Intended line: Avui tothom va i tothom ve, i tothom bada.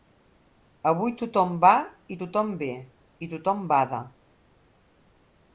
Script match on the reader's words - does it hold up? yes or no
yes